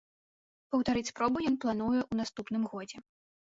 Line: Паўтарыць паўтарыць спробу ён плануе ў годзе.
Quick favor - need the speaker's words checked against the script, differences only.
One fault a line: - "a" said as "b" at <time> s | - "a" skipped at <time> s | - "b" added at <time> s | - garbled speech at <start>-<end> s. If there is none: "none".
- "паўтарыць" skipped at 1.1 s
- "наступным" added at 2.2 s